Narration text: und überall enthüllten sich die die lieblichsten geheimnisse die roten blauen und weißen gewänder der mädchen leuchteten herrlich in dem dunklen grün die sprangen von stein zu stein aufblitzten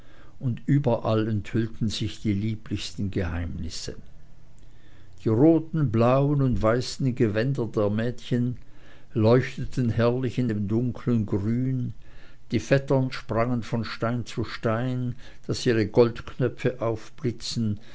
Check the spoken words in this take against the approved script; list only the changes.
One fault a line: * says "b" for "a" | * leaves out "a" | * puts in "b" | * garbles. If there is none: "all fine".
* leaves out "die"
* puts in "vettern"
* puts in "daß ihre goldknöpfe"